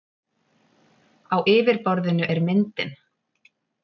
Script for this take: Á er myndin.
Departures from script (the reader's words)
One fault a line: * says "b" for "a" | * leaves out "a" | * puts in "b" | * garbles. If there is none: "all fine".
* puts in "yfirborðinu"